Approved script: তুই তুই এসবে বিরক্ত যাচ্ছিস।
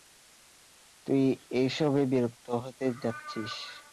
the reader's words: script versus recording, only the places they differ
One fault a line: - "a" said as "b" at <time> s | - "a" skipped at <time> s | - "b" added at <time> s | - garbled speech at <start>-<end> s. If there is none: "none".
- "তুই" skipped at 1.2 s
- "হতে" added at 2.6 s